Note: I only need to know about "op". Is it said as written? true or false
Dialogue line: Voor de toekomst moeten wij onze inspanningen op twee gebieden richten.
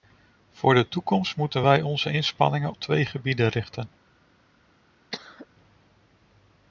false